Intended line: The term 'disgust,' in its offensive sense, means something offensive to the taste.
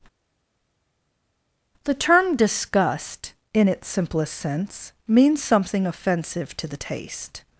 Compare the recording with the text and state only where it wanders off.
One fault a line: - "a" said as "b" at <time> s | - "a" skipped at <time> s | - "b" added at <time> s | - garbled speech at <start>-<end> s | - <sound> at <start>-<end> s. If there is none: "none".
- "offensive" said as "simplest" at 3.9 s